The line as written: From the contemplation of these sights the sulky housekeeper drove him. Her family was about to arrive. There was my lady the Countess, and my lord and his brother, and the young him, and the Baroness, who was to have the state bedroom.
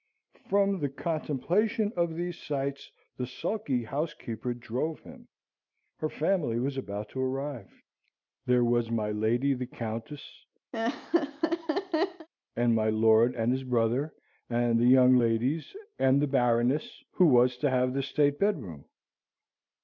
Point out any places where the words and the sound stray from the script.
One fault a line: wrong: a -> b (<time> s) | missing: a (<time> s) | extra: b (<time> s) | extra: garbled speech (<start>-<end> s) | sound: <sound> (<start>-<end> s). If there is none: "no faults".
sound: laugh (10.7-12.3 s)
wrong: him -> ladies (15.1 s)